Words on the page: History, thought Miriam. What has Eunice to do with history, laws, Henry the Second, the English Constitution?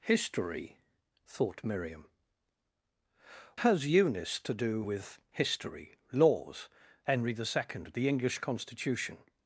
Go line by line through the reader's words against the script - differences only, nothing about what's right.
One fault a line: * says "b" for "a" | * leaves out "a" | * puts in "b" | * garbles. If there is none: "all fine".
* leaves out "What"